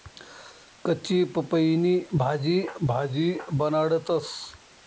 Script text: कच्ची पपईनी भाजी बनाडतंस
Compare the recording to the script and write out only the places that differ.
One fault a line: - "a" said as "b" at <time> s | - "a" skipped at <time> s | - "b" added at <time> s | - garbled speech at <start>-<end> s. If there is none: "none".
- "भाजी" added at 2.8 s